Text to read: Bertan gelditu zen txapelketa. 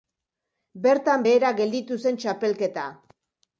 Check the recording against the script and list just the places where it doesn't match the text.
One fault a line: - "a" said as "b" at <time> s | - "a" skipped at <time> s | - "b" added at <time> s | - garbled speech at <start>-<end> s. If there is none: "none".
- "behera" added at 1.3 s